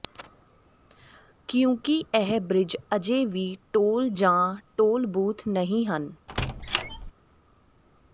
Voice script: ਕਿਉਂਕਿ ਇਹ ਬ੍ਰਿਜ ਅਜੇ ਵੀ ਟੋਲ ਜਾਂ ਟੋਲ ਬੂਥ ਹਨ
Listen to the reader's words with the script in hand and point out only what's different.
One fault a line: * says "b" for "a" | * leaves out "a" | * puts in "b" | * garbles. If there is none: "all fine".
* puts in "ਨਹੀਂ"